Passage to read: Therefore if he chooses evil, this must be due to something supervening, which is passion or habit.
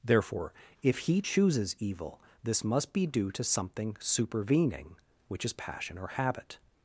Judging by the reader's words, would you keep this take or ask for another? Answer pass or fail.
pass